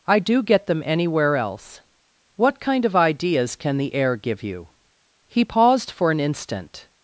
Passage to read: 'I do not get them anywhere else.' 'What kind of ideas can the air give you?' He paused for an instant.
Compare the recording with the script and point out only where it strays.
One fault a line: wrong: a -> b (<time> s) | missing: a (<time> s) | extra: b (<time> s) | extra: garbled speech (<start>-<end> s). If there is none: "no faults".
missing: not (0.4 s)